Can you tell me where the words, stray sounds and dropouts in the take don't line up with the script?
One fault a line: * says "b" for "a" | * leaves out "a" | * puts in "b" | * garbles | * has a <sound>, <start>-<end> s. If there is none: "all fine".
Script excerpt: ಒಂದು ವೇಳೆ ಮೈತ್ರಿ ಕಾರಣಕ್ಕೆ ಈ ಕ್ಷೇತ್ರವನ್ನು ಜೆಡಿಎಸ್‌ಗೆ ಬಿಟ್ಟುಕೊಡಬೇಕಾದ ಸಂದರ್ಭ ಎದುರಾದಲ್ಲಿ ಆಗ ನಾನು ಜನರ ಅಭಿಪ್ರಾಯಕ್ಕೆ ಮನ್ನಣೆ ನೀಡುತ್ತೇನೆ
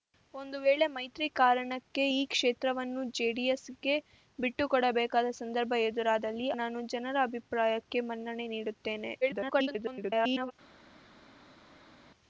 * leaves out "ಆಗ"
* garbles